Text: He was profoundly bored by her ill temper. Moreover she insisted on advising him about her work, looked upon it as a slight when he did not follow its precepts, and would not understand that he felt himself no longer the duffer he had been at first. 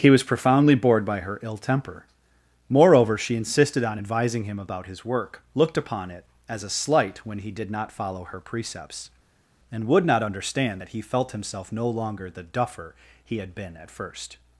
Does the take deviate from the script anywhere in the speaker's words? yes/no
yes